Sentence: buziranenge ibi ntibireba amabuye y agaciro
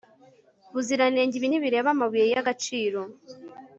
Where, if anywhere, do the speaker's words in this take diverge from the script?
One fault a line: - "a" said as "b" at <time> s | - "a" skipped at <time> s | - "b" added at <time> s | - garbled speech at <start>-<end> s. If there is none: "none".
none